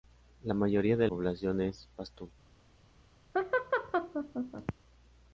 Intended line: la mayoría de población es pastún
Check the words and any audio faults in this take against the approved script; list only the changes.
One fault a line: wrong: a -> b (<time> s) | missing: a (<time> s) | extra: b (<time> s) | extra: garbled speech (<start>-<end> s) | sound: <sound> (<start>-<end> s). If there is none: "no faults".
sound: laugh (3.3-4.7 s)